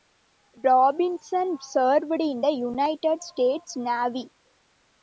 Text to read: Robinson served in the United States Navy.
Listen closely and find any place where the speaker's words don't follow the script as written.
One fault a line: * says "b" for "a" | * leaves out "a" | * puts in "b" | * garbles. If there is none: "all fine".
all fine